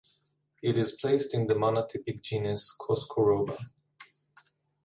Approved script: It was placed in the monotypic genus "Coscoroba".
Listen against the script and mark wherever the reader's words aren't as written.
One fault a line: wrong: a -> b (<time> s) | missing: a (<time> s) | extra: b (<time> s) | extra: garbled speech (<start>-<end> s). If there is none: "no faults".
wrong: was -> is (0.8 s)